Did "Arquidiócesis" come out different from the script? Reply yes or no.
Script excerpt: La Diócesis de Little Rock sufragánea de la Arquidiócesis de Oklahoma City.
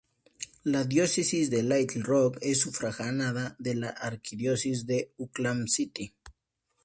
no